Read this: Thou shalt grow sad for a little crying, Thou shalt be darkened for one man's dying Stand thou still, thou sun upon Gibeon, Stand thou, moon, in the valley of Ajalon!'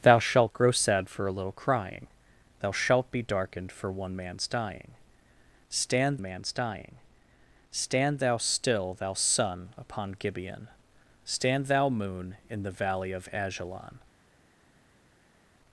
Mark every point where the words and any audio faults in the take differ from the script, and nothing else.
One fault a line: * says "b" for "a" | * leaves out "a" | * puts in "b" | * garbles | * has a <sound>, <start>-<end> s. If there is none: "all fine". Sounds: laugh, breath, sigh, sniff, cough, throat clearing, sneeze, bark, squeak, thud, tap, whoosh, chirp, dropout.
* puts in "man's dying Stand"